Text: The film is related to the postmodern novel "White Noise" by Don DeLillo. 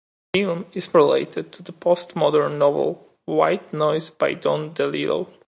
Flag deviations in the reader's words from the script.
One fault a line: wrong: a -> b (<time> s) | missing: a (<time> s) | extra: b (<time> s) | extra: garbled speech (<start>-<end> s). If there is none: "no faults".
no faults